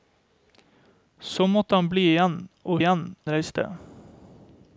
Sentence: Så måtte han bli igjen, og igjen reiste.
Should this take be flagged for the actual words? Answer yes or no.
no